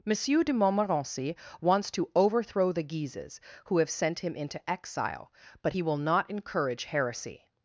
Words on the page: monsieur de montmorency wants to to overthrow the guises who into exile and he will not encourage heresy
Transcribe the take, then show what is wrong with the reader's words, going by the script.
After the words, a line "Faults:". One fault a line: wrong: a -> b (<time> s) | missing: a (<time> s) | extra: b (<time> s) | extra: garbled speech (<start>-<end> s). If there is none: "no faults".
monsieur de montmorency wants to overthrow the guises who have sent him into exile but he will not encourage heresy
Faults:
missing: to (2.1 s)
extra: have sent him (3.8 s)
wrong: and -> but (5.6 s)